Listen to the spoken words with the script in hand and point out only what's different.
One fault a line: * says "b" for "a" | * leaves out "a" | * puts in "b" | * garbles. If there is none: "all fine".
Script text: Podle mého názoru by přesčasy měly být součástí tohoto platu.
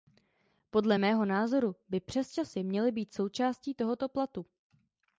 all fine